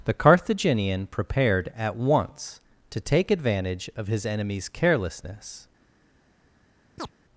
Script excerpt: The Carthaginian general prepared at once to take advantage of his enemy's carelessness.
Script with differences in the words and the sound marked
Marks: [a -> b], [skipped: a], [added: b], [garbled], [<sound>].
The Carthaginian [skipped: general] prepared at once to take advantage of his enemy's carelessness. [chirp]